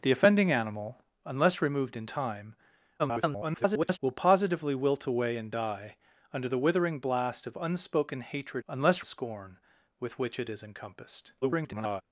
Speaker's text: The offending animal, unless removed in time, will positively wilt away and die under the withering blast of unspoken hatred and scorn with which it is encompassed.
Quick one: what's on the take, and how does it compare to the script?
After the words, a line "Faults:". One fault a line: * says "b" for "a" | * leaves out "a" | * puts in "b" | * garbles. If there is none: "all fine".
The offending animal, unless removed in time, [garbled] will positively wilt away and die under the withering blast of unspoken hatred unless scorn with which it is encompassed. [garbled]
Faults:
* garbles
* says "unless" for "and"
* garbles